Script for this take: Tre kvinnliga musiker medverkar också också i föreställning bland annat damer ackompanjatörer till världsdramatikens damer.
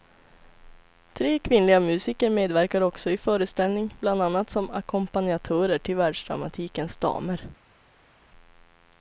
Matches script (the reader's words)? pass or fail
fail